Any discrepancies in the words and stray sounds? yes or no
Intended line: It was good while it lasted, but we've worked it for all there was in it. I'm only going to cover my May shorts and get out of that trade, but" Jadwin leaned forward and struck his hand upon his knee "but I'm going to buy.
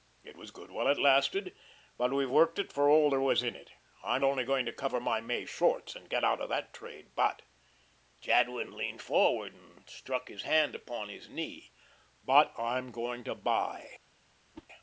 yes